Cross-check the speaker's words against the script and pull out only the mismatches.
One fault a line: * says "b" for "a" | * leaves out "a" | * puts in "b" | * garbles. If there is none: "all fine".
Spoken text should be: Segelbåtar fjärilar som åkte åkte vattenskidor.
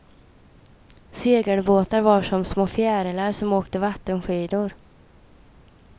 * puts in "var som små"
* leaves out "åkte"